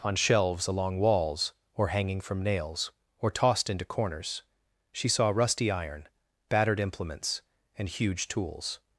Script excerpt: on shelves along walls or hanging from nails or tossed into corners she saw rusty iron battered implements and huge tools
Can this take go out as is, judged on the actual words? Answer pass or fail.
pass